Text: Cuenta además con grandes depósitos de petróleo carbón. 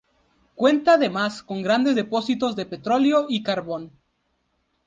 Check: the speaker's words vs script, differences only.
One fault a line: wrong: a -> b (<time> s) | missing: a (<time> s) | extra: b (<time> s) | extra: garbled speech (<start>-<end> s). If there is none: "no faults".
extra: y (3.3 s)